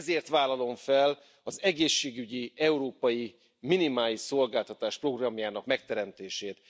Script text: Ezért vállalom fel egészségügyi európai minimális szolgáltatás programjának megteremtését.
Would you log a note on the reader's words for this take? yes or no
yes